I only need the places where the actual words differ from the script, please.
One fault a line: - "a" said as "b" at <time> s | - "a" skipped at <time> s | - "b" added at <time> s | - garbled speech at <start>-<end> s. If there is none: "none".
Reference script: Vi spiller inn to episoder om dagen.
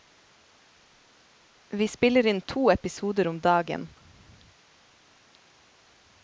none